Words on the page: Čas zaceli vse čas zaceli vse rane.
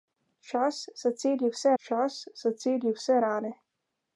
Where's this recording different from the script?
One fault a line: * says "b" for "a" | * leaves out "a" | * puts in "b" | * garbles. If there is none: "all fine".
all fine